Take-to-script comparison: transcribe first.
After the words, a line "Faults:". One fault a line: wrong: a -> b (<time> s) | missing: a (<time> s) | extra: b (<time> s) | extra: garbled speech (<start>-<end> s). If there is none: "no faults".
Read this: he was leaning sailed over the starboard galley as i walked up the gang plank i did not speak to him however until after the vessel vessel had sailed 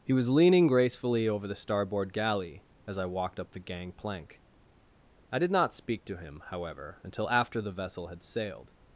he was leaning gracefully over the starboard galley as i walked up the gang plank i did not speak to him however until after the vessel had sailed
Faults:
wrong: sailed -> gracefully (0.7 s)
missing: vessel (8.1 s)